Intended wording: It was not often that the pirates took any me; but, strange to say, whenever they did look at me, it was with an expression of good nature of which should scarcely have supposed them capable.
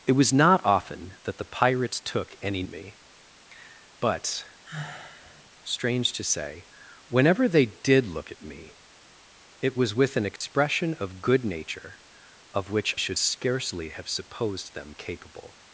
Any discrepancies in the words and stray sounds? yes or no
yes